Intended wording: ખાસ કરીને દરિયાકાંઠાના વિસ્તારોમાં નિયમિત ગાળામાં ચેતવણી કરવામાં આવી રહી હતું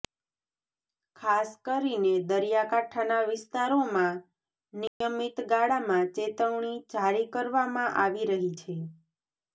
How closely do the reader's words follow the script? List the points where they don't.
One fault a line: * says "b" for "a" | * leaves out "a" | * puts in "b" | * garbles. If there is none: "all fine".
* puts in "જારી"
* says "છે" for "હતું"